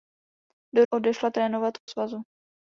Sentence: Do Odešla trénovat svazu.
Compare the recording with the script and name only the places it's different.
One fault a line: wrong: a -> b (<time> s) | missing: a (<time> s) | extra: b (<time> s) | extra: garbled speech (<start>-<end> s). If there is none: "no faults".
no faults